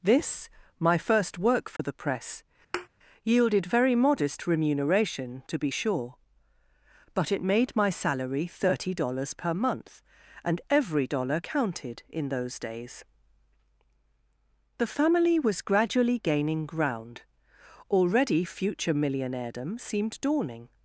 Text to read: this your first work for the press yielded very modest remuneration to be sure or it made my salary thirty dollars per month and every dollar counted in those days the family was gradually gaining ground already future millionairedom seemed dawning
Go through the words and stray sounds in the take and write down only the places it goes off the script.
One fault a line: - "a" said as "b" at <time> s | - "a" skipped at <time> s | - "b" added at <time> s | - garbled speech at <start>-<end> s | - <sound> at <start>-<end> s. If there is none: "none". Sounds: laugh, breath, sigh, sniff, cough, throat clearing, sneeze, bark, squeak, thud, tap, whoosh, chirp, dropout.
- "your" said as "my" at 0.8 s
- dropout at 1.8-1.8 s
- thud at 2.7-2.9 s
- "or" said as "but" at 7.1 s